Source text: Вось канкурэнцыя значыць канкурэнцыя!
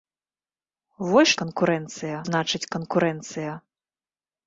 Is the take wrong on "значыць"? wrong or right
right